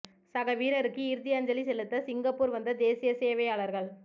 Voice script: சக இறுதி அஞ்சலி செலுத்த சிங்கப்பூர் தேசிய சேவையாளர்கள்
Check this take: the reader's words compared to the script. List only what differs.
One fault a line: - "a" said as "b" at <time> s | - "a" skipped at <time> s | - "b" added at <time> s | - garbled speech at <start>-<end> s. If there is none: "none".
- "வீரருக்கு" added at 0.5 s
- "வந்த" added at 2.5 s